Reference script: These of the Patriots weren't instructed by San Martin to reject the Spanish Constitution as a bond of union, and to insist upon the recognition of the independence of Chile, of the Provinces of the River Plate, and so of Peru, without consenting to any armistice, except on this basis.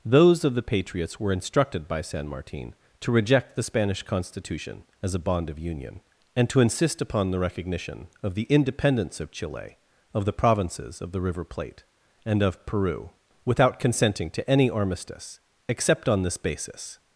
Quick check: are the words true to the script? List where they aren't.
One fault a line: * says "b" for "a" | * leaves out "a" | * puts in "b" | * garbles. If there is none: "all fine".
* says "Those" for "These"
* says "were" for "weren't"
* leaves out "so"